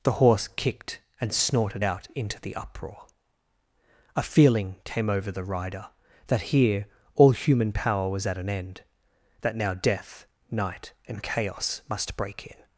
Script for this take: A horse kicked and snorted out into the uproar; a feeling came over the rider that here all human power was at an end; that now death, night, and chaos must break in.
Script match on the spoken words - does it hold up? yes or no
no